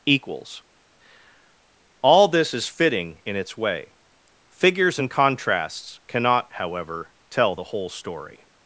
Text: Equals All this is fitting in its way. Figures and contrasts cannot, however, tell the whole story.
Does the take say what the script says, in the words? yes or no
yes